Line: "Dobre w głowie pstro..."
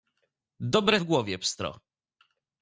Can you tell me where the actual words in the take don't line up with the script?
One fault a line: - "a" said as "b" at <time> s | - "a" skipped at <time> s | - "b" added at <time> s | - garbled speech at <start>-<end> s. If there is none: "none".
none